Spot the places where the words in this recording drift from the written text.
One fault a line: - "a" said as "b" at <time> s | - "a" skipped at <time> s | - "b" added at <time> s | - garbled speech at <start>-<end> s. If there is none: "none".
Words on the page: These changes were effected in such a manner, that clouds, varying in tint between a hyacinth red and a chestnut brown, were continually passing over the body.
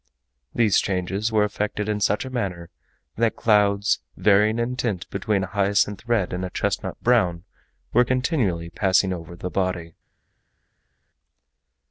none